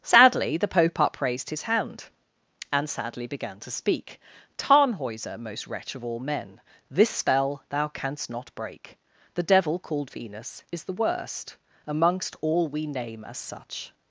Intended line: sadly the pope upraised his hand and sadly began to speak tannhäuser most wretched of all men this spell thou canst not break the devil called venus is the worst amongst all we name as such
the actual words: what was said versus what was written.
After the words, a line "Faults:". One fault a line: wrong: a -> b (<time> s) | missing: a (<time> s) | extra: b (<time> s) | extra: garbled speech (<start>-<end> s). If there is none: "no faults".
sadly the pope upraised his hand and sadly began to speak tannhäuser most wretch of all men this spell thou canst not break the devil called venus is the worst amongst all we name as such
Faults:
wrong: wretched -> wretch (5.7 s)